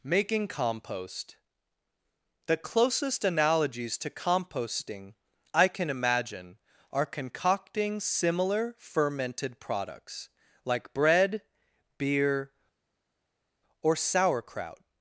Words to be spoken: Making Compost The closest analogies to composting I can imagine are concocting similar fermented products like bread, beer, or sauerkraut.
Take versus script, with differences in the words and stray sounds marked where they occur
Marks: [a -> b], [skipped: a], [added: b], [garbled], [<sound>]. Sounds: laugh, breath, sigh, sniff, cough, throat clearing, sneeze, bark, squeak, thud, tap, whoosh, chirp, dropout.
Making Compost The closest analogies to composting I can imagine are concocting similar fermented products like bread, beer, or sauerkraut.